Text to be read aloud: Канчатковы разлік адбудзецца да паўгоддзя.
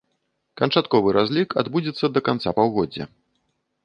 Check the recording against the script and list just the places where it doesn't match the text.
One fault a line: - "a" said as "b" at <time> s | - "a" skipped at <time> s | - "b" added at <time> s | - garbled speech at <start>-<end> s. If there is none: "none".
- "канца" added at 2.3 s